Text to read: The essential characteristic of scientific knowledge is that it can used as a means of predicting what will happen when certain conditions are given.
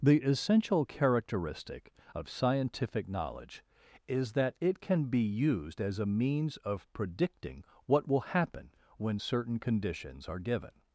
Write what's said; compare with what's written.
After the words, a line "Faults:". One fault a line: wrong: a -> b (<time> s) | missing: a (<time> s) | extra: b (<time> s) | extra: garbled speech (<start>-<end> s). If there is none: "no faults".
The essential characteristic of scientific knowledge is that it can be used as a means of predicting what will happen when certain conditions are given.
Faults:
extra: be (5.1 s)